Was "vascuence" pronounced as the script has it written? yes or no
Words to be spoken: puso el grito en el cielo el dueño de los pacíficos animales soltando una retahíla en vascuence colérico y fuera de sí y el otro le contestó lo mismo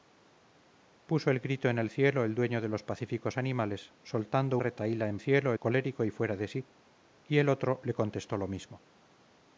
no